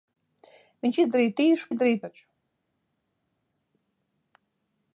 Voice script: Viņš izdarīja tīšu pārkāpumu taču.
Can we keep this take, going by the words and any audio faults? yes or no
no